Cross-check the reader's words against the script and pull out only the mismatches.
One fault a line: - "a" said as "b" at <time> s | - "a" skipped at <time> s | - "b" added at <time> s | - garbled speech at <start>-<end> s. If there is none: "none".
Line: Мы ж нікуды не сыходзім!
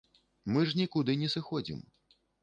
none